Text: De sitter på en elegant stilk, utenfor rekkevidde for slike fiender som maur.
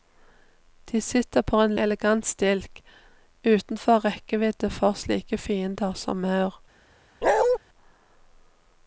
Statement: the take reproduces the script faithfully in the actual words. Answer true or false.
true